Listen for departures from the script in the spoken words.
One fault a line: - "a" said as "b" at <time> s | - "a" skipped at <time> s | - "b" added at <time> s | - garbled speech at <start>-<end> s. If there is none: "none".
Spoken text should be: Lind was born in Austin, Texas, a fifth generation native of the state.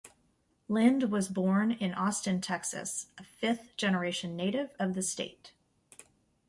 none